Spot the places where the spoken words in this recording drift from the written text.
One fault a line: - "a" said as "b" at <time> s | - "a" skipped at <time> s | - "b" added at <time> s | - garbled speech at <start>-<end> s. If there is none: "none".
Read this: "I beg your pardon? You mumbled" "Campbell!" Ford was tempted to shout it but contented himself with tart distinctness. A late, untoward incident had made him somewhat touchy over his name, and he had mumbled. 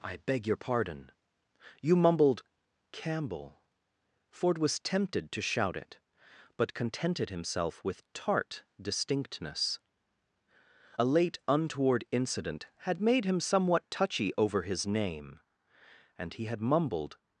none